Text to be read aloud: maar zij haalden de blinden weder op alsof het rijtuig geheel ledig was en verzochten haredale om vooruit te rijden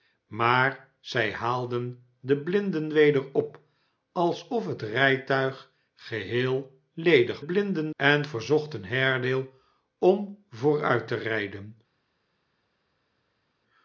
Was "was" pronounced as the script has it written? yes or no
no